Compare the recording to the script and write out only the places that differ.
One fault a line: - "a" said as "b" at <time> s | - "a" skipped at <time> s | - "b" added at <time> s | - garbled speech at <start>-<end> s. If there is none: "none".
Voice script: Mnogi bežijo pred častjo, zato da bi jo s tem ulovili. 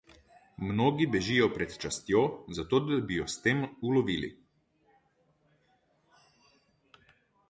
none